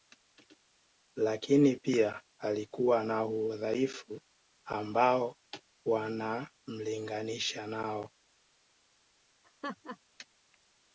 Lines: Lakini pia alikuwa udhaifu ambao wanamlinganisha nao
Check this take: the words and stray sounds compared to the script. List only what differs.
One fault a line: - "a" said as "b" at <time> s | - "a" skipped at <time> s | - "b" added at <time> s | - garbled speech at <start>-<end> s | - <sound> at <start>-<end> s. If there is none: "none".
- "na" added at 3.0 s
- laugh at 9.4-10.0 s